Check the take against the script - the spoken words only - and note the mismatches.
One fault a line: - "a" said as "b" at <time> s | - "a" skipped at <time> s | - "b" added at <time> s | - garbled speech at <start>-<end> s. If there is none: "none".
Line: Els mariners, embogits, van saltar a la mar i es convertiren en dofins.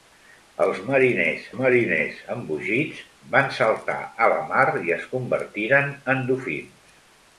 - "mariners" added at 1.6 s